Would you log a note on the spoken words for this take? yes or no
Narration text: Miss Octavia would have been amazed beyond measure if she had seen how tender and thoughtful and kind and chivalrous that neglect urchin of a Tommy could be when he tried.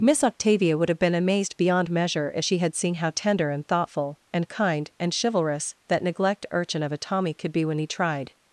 no